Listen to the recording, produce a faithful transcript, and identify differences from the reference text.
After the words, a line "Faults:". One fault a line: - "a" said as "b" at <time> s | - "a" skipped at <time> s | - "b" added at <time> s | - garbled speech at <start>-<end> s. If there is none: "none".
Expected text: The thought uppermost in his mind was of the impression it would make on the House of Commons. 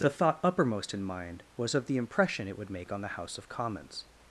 The thought uppermost in mind was of the impression it would make on the House of Commons.
Faults:
- "his" skipped at 1.0 s